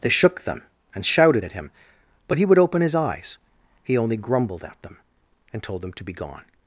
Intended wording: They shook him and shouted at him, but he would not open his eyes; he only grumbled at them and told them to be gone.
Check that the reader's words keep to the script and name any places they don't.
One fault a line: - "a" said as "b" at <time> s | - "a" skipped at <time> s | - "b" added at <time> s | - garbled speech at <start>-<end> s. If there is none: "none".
- "him" said as "them" at 0.4 s
- "not" skipped at 2.6 s